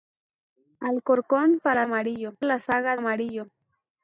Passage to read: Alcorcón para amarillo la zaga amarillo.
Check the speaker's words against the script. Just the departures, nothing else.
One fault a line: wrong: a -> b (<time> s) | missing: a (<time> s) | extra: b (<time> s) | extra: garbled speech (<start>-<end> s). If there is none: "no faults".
no faults